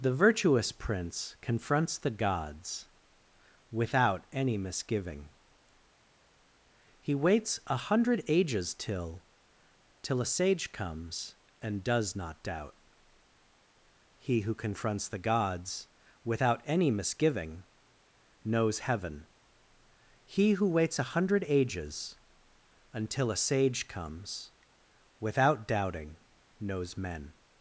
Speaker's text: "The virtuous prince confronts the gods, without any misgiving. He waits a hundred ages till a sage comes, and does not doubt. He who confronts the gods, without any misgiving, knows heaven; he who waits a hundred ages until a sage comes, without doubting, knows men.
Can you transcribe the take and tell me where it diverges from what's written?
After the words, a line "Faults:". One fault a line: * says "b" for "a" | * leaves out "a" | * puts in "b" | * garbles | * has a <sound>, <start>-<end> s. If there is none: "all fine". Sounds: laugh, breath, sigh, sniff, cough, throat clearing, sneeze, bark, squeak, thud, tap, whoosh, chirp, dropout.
"The virtuous prince confronts the gods, without any misgiving. He waits a hundred ages till till a sage comes, and does not doubt. He who confronts the gods, without any misgiving, knows heaven; he who waits a hundred ages until a sage comes, without doubting, knows men.
Faults:
* puts in "till"